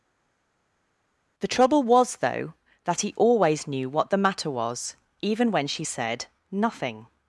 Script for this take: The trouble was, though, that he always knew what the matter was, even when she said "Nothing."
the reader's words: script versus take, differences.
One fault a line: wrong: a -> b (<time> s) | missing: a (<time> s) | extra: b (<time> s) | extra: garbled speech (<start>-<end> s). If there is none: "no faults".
no faults